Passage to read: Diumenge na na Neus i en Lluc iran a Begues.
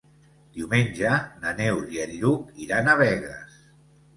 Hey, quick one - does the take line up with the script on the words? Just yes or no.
no